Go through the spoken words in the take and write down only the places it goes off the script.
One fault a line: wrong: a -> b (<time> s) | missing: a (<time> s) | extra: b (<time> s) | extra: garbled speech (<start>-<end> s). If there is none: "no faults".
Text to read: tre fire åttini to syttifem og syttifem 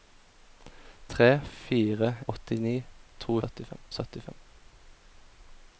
no faults